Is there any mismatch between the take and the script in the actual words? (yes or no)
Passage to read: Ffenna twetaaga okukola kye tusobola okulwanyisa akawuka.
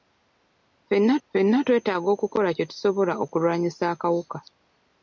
yes